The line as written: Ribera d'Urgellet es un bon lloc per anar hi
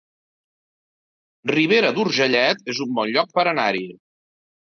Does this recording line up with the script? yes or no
yes